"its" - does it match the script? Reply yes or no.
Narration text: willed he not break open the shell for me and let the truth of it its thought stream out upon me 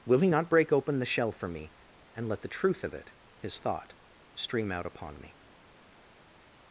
no